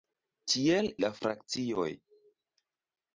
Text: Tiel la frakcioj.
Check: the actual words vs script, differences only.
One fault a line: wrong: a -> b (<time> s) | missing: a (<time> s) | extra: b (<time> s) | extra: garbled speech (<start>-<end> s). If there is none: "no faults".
no faults